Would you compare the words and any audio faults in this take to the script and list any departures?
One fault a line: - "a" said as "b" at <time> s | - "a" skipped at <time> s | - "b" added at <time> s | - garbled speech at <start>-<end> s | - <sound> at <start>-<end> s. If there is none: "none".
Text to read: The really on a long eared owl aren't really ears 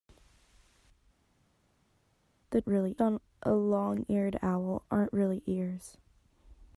none